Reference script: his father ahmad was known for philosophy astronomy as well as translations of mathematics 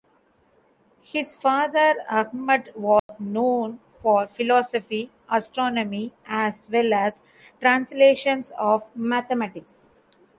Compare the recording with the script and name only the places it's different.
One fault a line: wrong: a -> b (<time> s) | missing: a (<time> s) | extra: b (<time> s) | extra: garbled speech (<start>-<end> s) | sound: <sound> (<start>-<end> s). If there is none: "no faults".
sound: dropout (3.0-3.1 s)